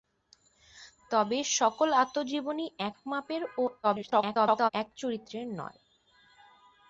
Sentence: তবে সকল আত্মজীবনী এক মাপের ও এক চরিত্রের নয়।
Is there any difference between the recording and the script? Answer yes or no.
yes